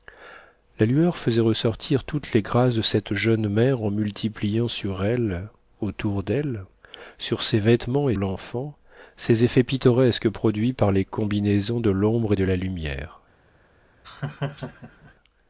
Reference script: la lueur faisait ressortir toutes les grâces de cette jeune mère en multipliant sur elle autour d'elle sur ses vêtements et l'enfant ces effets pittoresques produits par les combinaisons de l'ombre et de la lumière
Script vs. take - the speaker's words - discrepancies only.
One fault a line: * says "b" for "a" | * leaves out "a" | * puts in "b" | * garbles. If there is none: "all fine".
all fine